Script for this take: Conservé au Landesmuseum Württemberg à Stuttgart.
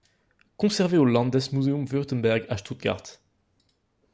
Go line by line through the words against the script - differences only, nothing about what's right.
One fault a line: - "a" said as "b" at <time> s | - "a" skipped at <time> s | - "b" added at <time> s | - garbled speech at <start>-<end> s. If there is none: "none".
none